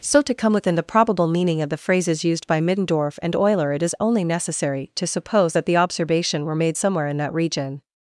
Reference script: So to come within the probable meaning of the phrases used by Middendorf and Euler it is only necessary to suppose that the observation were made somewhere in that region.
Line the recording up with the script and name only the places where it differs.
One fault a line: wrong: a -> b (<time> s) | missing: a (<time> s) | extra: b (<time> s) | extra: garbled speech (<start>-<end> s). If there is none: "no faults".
no faults